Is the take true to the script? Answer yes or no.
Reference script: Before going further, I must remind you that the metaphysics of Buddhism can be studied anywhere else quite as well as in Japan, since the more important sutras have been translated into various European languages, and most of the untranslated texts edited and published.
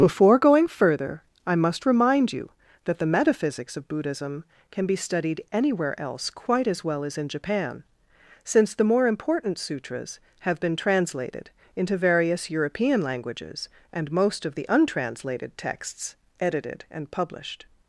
yes